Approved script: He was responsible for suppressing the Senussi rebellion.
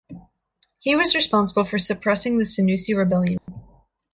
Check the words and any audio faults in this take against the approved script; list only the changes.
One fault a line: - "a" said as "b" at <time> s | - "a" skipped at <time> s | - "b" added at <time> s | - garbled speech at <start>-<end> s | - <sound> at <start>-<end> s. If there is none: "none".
- dropout at 3.4-3.5 s